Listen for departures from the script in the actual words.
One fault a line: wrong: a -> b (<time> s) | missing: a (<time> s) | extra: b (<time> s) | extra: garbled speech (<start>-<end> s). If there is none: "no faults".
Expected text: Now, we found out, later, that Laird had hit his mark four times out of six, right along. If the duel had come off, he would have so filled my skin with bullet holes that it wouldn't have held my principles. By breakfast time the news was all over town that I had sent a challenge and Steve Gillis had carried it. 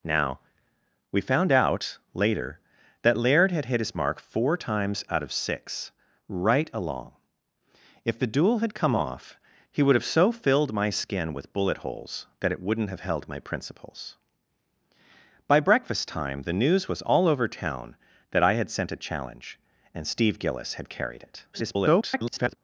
extra: garbled speech (21.5-22.6 s)